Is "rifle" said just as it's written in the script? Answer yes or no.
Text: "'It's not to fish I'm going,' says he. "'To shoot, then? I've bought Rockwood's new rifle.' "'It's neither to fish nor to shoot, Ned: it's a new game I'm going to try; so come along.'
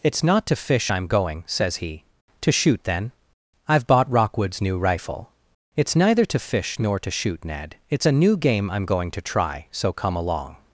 yes